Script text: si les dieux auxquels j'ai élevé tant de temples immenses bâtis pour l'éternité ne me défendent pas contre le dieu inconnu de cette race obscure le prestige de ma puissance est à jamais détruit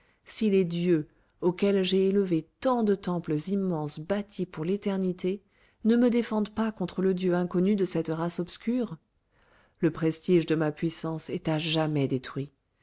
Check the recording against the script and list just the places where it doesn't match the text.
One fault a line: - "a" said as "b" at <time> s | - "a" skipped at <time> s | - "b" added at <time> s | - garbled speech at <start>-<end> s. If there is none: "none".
none